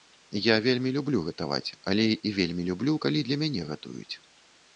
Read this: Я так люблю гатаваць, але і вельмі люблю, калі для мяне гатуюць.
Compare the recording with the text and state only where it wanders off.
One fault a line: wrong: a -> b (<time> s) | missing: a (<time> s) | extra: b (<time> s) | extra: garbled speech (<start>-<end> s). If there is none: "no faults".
wrong: так -> вельмі (0.7 s)